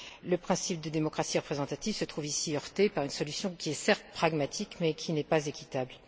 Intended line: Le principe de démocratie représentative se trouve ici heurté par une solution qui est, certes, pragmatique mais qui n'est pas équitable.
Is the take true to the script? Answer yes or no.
yes